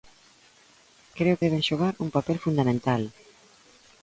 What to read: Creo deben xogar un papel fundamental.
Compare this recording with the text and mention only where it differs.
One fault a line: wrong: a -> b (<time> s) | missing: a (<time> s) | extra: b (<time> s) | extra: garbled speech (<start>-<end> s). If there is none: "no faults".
no faults